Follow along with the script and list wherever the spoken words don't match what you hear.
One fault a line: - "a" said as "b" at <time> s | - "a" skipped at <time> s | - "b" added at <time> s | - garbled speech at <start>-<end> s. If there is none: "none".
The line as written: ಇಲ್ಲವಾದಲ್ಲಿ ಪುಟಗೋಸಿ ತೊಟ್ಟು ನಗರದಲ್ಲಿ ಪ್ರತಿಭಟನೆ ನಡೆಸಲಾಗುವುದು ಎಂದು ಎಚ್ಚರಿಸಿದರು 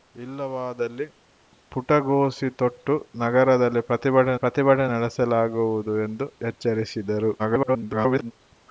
- "ಪ್ರತಿಭಟನೆ" added at 4.3 s
- garbled speech at 7.4-8.3 s